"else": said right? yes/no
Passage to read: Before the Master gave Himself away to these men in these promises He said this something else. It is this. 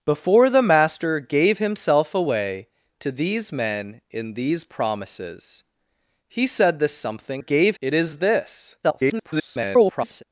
no